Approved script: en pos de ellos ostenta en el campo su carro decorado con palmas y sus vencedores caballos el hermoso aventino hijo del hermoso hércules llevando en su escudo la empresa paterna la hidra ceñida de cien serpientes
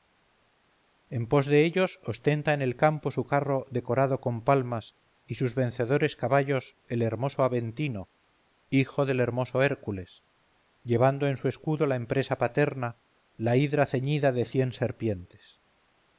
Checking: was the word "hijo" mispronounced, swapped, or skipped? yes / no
no